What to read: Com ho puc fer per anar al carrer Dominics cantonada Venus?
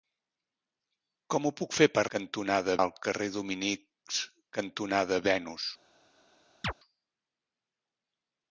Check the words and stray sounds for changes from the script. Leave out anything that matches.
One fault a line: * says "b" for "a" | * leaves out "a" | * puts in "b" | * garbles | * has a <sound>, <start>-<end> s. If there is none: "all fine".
* says "cantonada" for "anar"
* has a chirp, 6.6-6.7 s